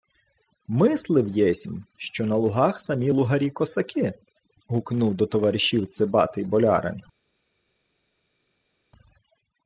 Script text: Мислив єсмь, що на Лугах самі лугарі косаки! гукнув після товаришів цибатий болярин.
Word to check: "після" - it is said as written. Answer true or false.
false